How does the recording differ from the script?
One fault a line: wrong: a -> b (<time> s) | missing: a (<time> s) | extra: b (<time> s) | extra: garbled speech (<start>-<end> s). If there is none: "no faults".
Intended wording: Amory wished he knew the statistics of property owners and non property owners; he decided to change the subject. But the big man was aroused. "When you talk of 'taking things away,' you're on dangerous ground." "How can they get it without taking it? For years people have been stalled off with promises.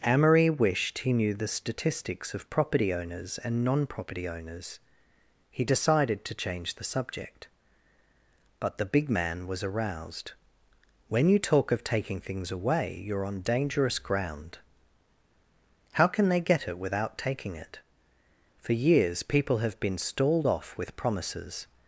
no faults